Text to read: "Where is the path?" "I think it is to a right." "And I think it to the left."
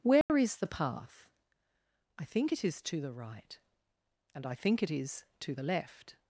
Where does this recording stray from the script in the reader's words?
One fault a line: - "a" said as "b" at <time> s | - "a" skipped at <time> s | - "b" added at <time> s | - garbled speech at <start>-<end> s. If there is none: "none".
- "a" said as "the" at 3.0 s
- "is" added at 4.9 s